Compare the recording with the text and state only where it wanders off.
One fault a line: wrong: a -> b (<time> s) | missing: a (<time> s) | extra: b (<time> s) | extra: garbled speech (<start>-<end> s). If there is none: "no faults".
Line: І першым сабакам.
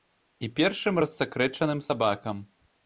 extra: рассакрэчаным (1.1 s)